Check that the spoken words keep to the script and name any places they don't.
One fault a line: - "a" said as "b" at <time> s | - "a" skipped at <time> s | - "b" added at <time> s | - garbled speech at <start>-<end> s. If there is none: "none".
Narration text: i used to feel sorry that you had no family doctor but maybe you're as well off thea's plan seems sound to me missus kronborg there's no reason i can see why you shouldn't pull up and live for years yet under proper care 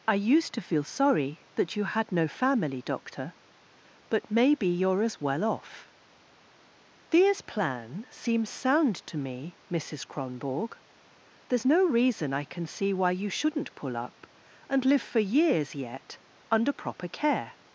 none